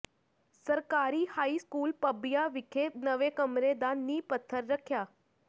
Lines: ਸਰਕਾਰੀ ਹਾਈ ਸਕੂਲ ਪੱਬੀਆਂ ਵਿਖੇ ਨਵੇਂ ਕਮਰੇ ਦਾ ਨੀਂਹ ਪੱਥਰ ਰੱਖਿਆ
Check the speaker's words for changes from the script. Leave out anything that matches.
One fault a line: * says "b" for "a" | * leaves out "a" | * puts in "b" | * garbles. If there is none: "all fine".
all fine